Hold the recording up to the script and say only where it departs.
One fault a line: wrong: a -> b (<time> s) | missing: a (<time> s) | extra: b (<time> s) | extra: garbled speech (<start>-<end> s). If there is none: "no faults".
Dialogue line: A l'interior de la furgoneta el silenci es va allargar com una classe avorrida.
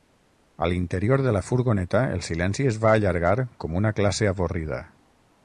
no faults